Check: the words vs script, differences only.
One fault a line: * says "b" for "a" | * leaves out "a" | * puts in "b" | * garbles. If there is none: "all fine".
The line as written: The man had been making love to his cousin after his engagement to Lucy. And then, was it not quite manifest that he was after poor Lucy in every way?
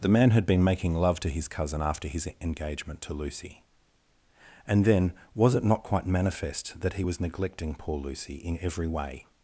* says "neglecting" for "after"